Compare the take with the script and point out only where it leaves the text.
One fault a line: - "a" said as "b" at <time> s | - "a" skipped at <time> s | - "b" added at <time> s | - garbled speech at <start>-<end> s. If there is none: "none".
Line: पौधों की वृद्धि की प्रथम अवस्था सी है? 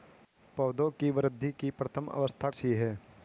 none